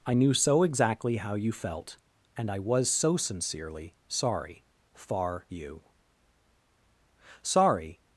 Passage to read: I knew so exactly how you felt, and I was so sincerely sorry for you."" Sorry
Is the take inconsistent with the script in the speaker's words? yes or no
yes